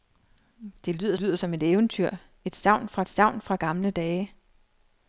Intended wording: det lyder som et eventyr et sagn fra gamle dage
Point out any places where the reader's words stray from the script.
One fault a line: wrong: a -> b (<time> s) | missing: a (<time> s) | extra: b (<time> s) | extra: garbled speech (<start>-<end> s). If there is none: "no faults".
extra: lyder (1.1 s)
extra: sagn fra (3.1 s)